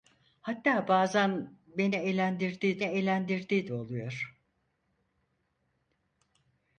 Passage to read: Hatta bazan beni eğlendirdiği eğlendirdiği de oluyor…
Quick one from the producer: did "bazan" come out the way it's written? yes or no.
yes